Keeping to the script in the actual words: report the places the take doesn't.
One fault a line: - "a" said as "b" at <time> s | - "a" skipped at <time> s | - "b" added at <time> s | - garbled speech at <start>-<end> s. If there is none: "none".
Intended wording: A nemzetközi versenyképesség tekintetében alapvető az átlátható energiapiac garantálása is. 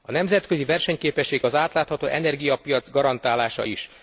- "tekintetében alapvető" skipped at 1.4 s